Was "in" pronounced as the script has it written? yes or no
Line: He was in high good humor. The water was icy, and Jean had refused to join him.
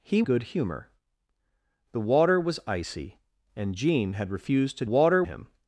no